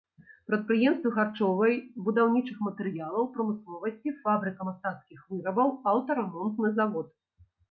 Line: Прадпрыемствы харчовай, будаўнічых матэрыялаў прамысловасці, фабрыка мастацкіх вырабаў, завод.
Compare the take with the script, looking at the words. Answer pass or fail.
fail